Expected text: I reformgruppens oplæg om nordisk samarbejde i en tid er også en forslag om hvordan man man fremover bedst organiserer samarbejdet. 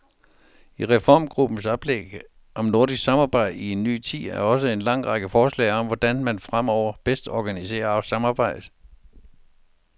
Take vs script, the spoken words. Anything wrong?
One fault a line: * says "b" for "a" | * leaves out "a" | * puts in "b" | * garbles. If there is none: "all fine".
* puts in "ny"
* puts in "lang række"
* leaves out "man"